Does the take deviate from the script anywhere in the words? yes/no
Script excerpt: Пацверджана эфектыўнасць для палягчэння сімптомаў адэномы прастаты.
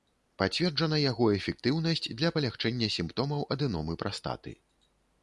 yes